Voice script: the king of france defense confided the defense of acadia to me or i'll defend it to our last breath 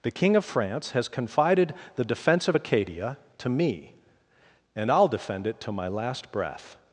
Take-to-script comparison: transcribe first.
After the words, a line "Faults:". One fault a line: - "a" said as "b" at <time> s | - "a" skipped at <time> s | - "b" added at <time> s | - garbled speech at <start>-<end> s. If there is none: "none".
the king of france has confided the defense of acadia to me and i'll defend it to my last breath
Faults:
- "defense" said as "has" at 0.9 s
- "or" said as "and" at 4.7 s
- "our" said as "my" at 5.7 s